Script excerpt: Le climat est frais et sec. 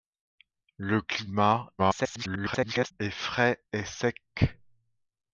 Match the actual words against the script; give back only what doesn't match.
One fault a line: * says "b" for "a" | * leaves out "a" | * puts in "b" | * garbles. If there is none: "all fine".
* garbles